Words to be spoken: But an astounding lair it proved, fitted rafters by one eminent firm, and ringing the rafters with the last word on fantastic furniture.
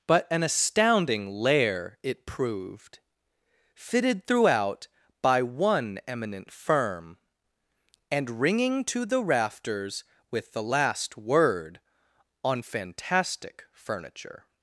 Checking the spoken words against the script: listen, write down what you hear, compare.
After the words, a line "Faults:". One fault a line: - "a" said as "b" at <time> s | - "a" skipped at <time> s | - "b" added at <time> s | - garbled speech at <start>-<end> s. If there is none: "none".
But an astounding lair it proved, fitted throughout by one eminent firm, and ringing to the rafters with the last word on fantastic furniture.
Faults:
- "rafters" said as "throughout" at 4.3 s
- "to" added at 8.8 s